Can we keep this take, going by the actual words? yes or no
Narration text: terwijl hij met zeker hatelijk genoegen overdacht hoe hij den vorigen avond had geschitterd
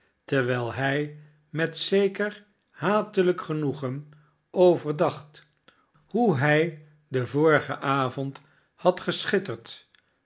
yes